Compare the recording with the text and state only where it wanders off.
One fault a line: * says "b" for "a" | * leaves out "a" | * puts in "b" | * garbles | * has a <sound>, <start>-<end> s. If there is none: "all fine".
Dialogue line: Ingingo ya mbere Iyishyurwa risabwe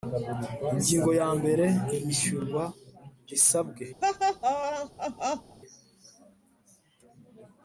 * has a laugh, 4.0-5.6 s